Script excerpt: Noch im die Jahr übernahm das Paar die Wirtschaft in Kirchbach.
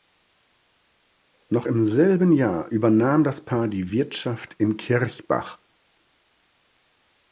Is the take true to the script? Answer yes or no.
no